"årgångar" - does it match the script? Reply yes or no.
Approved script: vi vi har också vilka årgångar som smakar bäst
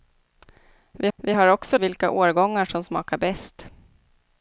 yes